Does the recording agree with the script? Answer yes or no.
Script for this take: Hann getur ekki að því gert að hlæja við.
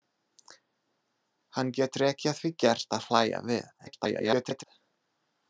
no